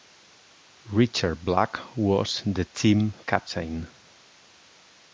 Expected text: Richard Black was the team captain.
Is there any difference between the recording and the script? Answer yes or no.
no